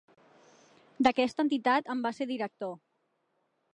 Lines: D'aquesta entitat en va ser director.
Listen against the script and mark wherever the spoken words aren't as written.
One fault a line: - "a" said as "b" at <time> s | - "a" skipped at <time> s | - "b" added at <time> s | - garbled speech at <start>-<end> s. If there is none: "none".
none